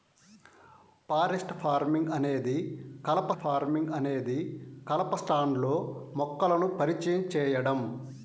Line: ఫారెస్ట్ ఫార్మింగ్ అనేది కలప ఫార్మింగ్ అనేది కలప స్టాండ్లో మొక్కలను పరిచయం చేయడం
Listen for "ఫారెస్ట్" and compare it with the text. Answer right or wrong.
right